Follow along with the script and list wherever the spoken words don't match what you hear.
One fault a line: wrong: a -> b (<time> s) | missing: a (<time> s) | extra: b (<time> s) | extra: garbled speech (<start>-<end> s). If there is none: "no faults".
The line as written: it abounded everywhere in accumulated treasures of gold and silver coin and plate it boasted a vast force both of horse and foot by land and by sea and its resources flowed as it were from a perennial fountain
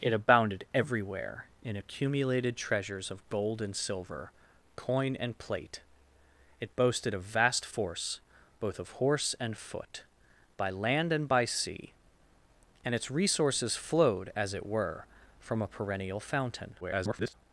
extra: garbled speech (16.8-17.3 s)